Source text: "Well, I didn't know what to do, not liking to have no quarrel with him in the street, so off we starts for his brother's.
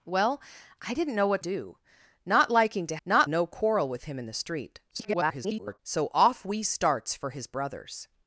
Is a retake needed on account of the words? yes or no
yes